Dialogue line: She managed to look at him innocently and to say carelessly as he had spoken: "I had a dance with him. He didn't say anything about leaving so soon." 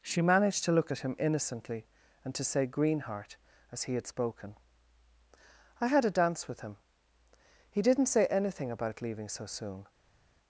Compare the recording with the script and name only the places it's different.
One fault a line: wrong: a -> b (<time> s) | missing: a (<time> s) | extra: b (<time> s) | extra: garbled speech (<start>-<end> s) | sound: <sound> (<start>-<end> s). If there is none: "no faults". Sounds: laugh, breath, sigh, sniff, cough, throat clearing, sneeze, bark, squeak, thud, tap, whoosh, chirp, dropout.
wrong: carelessly -> greenheart (2.7 s)